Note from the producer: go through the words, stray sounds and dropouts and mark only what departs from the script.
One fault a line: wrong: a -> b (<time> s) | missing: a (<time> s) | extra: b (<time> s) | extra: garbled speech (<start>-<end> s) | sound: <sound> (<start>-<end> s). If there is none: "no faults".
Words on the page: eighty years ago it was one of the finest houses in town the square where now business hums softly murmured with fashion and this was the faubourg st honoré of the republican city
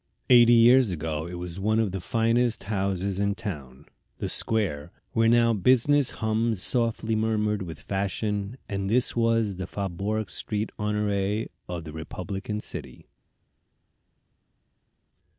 no faults